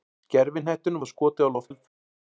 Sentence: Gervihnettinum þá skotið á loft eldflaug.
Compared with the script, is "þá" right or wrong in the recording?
right